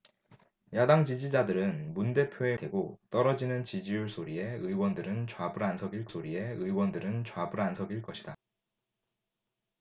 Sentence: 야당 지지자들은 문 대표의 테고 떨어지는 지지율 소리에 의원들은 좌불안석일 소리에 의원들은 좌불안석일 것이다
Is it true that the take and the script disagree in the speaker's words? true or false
false